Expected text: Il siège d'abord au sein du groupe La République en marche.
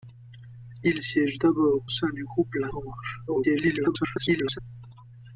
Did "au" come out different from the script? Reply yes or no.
yes